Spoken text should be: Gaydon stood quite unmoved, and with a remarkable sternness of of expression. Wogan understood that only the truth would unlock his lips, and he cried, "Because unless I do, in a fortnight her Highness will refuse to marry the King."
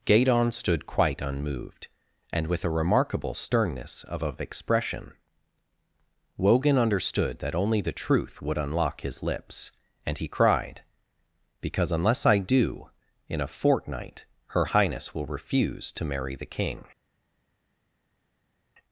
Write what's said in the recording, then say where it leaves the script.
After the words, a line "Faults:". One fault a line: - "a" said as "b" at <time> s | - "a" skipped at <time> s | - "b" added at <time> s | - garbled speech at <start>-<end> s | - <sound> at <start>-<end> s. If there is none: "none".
Gaydon stood quite unmoved, and with a remarkable sternness of of expression. Wogan understood that only the truth would unlock his lips, and he cried, "Because unless I do, in a fortnight her Highness will refuse to marry the King."
Faults:
none